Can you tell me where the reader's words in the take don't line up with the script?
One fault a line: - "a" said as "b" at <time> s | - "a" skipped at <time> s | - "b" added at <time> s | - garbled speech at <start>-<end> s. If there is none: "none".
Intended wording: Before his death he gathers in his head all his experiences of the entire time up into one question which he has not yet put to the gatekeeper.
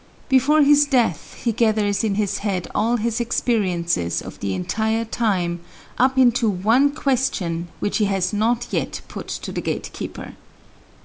none